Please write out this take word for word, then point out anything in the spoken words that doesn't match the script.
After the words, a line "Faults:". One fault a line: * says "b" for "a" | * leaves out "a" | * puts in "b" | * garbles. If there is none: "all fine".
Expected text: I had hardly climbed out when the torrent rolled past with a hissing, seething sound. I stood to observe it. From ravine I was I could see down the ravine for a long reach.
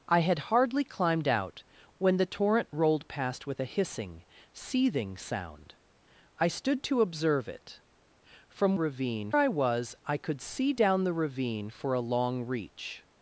I had hardly climbed out when the torrent rolled past with a hissing, seething sound. I stood to observe it. From ravine I was I could see down the ravine for a long reach.
Faults:
all fine